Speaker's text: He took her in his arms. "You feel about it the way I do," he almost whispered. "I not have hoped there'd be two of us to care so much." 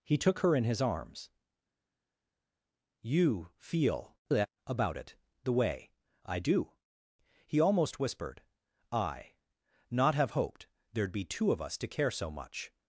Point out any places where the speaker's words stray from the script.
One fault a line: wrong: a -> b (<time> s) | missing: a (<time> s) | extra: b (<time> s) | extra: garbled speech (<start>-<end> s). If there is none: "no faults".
no faults